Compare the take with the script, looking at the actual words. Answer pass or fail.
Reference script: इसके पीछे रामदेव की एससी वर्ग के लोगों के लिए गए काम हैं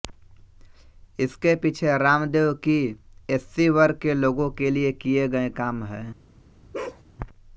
fail